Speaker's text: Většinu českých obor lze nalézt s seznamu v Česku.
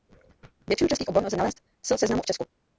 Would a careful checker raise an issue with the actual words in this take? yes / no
no